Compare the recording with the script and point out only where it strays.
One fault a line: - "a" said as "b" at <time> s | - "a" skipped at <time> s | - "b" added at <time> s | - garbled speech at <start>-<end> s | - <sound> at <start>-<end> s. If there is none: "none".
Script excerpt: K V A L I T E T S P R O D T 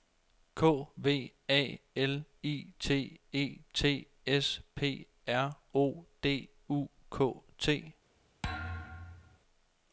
- "U K" added at 6.7 s
- thud at 8.4-9.4 s